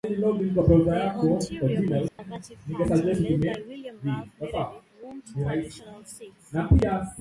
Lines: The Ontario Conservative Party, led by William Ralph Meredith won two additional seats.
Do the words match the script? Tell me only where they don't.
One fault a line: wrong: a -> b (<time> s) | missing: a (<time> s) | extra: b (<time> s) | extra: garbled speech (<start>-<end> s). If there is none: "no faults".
no faults